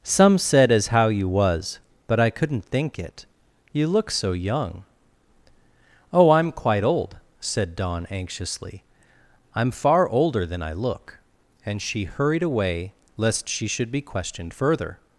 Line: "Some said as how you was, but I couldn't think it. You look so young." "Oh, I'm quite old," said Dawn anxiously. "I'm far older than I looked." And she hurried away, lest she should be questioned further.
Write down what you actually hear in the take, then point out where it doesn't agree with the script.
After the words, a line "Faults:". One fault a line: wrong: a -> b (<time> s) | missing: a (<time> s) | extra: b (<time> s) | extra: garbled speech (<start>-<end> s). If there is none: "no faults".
"Some said as how you was, but I couldn't think it. You look so young." "Oh, I'm quite old," said Dawn anxiously. "I'm far older than I look." And she hurried away, lest she should be questioned further.
Faults:
wrong: looked -> look (10.7 s)